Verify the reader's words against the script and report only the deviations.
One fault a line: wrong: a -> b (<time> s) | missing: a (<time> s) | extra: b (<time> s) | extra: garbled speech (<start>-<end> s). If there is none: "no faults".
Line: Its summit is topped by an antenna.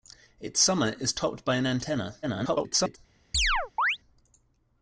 extra: garbled speech (2.2-3.0 s)